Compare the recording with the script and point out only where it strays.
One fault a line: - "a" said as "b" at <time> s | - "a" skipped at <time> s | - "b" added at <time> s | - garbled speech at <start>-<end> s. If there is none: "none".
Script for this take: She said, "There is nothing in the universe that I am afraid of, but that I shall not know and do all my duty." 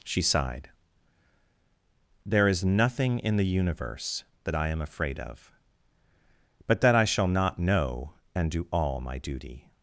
- "said" said as "sighed" at 0.2 s